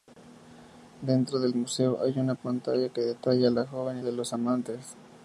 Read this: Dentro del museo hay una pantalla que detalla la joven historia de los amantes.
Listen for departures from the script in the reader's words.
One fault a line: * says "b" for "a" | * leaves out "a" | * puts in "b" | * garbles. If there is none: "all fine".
* leaves out "historia"